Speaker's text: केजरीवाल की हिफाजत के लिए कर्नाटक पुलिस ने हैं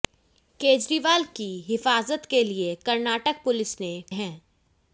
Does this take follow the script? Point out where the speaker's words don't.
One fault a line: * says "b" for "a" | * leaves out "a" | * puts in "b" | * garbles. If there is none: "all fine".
all fine